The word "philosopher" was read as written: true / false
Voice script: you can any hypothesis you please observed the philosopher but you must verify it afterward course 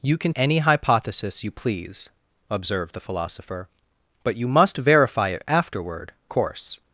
true